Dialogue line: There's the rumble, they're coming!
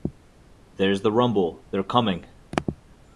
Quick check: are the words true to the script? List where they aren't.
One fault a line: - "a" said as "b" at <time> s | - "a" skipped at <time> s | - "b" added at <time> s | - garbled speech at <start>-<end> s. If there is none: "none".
none